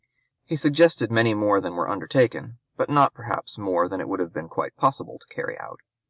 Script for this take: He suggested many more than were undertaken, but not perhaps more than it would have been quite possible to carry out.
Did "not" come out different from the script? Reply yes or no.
no